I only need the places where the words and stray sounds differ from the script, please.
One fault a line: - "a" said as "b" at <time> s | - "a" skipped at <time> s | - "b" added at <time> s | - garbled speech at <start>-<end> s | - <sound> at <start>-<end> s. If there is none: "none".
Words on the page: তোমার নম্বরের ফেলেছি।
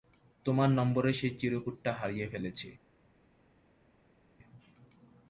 - "সেই চিরকুটটা হারিয়ে" added at 1.1 s